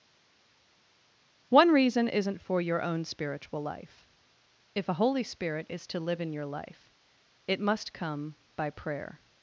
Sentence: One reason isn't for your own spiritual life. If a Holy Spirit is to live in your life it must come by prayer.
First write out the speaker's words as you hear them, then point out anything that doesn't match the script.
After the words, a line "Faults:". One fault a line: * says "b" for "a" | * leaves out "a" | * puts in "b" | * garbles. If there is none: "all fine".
One reason isn't for your own spiritual life. If a Holy Spirit is to live in your life it must come by prayer.
Faults:
all fine